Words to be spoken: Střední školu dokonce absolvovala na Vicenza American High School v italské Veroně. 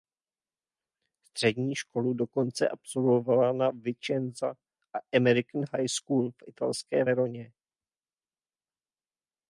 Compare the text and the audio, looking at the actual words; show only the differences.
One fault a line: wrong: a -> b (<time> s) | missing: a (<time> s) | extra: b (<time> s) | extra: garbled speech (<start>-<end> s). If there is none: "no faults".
no faults